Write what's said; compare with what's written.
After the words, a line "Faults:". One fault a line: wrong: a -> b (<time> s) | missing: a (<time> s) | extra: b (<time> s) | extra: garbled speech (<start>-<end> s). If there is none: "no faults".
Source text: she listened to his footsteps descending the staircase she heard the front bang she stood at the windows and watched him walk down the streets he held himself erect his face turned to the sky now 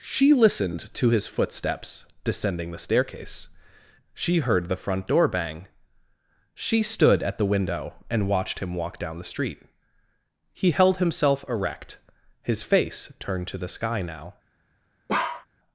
she listened to his footsteps descending the staircase she heard the front door bang she stood at the window and watched him walk down the street he held himself erect his face turned to the sky now
Faults:
extra: door (5.0 s)
wrong: windows -> window (7.5 s)
wrong: streets -> street (9.2 s)